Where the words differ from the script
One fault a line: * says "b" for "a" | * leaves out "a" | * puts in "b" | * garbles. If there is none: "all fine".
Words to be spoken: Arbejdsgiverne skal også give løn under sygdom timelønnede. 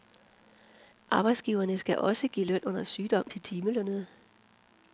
* puts in "til"